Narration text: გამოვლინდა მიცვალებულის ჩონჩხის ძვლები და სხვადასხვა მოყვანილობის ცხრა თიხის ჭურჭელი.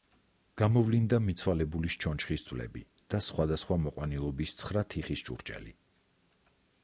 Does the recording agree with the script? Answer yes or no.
yes